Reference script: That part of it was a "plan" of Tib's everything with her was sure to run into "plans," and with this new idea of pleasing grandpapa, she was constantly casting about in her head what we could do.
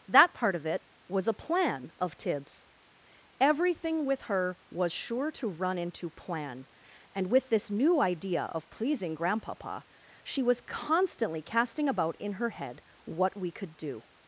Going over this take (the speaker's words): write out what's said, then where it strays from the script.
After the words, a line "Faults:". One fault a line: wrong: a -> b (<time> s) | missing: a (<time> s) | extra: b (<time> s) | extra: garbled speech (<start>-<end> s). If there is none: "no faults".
That part of it was a "plan" of Tib's everything with her was sure to run into "plan," and with this new idea of pleasing grandpapa, she was constantly casting about in her head what we could do.
Faults:
wrong: plans -> plan (6.1 s)